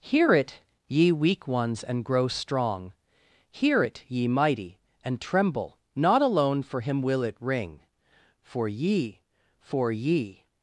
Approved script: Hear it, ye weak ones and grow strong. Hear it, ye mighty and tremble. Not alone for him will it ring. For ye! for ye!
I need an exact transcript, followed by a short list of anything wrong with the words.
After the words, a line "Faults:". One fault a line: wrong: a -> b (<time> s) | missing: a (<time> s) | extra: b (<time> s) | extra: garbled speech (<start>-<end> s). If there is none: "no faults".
Hear it, ye weak ones and grow strong. Hear it, ye mighty and tremble. Not alone for him will it ring. For ye! for ye!
Faults:
no faults